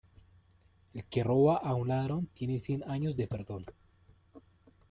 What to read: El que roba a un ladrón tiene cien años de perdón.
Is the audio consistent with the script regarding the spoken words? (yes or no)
yes